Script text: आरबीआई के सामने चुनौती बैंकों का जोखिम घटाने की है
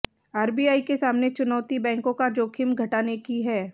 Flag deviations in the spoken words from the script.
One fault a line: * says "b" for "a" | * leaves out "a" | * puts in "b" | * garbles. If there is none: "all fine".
all fine